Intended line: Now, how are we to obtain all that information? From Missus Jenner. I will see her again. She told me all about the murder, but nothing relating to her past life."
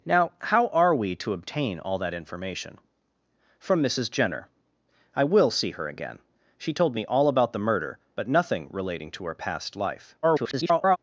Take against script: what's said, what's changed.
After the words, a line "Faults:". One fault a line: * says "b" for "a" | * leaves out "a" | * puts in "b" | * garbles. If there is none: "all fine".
Now, how are we to obtain all that information? From Missus Jenner. I will see her again. She told me all about the murder, but nothing relating to her past life." [garbled]
Faults:
* garbles